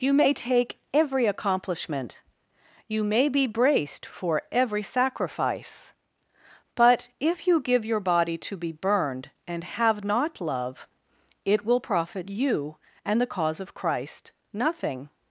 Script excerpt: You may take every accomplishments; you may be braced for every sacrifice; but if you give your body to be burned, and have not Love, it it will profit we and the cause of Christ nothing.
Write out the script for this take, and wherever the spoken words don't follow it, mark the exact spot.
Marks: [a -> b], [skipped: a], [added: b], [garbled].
You may take every [accomplishments; -> accomplishment] you may be braced for every sacrifice; but if you give your body to be burned, and have not Love, it [skipped: it] will profit [we -> you] and the cause of Christ nothing.